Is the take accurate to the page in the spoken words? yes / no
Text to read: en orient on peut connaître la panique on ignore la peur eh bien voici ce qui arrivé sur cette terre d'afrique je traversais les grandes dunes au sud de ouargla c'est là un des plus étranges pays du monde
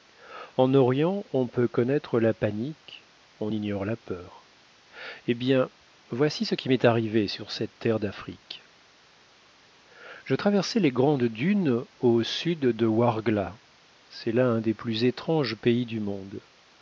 no